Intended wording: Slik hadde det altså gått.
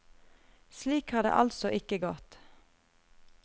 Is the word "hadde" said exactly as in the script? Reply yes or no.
no